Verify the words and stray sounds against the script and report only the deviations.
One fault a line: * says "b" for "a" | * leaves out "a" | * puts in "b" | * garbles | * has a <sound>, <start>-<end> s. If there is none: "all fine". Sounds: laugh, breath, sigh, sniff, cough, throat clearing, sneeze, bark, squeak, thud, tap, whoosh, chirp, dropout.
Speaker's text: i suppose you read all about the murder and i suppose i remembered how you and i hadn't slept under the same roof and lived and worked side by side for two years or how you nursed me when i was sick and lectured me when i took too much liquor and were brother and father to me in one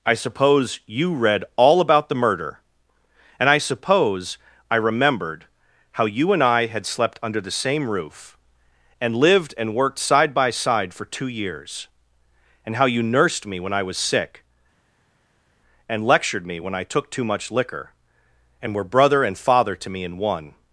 * says "had" for "hadn't"
* says "and" for "or"